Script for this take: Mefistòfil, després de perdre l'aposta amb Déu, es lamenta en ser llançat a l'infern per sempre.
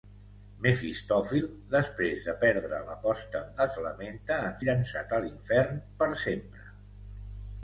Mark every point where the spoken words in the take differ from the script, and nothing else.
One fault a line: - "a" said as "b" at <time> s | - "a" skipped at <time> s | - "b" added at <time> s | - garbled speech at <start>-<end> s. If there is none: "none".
- "Déu" skipped at 3.6 s
- "ser" skipped at 4.6 s